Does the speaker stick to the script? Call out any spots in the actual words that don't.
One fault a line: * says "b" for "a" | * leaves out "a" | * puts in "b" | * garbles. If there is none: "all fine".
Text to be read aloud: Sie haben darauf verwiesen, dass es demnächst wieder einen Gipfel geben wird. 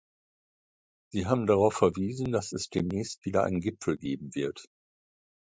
all fine